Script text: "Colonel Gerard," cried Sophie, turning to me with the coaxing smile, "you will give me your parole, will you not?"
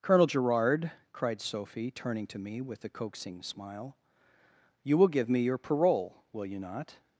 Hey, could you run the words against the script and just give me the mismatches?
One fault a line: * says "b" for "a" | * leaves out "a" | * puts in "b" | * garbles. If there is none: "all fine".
all fine